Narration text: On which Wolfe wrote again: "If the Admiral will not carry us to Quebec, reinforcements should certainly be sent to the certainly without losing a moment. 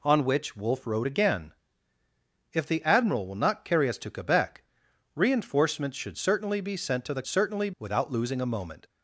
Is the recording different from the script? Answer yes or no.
no